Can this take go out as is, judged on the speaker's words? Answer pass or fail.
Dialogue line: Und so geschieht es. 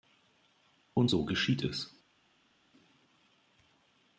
pass